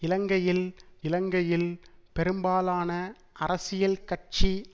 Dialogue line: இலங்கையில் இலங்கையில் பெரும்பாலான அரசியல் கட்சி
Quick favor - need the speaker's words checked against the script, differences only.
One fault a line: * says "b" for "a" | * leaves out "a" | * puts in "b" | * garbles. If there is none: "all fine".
all fine